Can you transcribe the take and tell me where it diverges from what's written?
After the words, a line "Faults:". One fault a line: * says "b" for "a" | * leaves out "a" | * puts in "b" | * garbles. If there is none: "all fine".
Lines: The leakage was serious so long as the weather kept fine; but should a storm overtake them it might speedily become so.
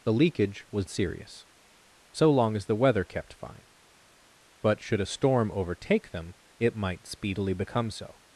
The leakage was serious so long as the weather kept fine; but should a storm overtake them it might speedily become so.
Faults:
all fine